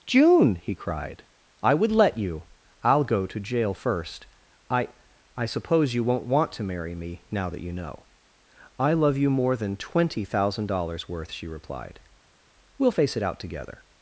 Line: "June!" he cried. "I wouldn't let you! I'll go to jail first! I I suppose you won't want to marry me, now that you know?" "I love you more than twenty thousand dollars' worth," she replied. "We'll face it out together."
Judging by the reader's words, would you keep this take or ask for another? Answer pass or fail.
fail